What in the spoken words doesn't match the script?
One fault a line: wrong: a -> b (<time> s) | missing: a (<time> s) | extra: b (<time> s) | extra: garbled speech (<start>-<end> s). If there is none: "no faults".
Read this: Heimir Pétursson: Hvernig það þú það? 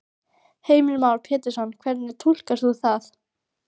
extra: Már (1.0 s)
wrong: það -> túlkar (2.3 s)